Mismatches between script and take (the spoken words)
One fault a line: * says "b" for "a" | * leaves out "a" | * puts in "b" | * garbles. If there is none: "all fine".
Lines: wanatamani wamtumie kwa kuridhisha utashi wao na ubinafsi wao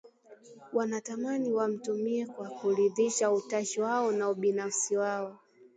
all fine